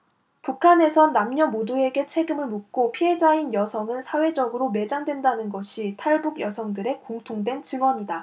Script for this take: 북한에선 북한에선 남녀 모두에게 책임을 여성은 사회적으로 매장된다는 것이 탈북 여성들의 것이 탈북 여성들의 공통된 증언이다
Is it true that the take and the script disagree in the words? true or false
true